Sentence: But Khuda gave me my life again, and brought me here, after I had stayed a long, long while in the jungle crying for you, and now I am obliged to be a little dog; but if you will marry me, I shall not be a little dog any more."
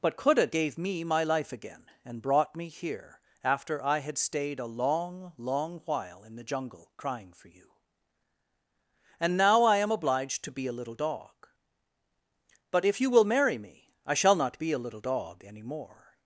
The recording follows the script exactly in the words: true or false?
true